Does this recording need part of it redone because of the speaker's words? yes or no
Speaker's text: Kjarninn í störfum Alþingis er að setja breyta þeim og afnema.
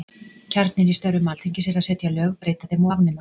yes